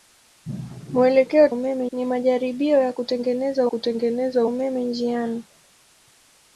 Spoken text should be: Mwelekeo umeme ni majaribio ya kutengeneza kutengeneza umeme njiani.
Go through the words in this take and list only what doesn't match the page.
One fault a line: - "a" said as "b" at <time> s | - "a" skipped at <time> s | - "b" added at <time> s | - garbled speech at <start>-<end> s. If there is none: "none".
none